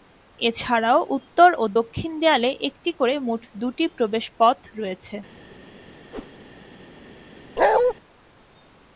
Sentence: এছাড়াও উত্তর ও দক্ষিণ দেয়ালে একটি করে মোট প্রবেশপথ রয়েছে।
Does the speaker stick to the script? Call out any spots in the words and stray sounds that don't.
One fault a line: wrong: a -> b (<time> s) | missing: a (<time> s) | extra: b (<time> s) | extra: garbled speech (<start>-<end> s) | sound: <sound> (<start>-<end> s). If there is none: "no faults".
extra: দুটি (3.6 s)
sound: whoosh (6.1-6.3 s)
sound: bark (7.6-7.9 s)